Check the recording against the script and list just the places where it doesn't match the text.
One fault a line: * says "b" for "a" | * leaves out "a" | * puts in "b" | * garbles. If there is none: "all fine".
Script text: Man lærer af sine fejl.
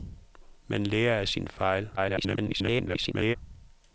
* garbles